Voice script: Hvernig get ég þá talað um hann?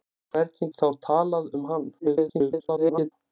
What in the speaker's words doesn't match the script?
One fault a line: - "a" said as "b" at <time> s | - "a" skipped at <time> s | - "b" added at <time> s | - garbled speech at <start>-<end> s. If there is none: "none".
- "get ég" skipped at 0.7 s
- garbled speech at 2.0-3.1 s